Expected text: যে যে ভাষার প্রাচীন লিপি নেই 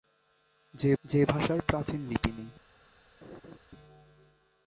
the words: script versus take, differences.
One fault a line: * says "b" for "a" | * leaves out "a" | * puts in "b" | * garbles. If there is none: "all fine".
all fine